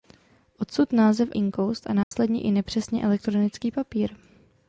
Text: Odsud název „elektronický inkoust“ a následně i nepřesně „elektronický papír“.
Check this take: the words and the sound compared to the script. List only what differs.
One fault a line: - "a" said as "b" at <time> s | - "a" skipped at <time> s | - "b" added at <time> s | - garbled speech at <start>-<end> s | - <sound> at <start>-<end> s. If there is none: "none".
- "elektronický" skipped at 1.3 s
- dropout at 2.0-2.1 s